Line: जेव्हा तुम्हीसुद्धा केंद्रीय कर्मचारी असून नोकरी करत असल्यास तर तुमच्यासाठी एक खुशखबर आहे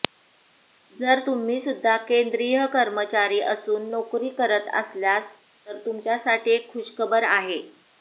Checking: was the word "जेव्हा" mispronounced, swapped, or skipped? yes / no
yes